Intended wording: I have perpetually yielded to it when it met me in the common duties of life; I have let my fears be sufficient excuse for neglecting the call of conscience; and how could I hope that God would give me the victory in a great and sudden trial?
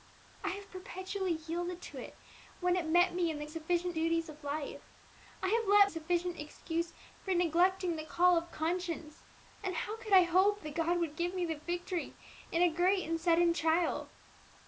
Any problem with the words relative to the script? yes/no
yes